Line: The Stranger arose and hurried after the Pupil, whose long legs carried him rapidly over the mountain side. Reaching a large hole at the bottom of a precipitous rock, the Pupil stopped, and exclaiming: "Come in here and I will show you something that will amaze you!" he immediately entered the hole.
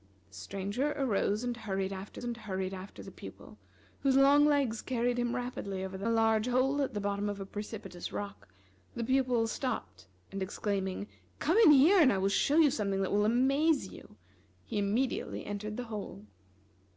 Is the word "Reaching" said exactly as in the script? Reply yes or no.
no